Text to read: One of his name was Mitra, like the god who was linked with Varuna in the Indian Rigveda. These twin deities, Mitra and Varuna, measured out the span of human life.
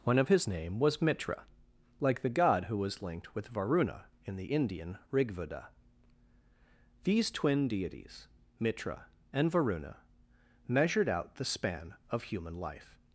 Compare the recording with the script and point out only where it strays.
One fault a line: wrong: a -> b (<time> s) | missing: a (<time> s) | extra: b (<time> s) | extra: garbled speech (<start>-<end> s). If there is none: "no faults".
no faults